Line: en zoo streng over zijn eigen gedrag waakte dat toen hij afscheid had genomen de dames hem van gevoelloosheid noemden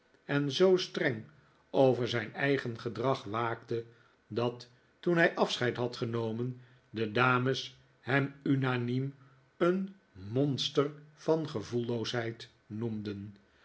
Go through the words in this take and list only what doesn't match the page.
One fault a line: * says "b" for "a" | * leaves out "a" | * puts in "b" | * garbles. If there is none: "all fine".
* puts in "unaniem een monster"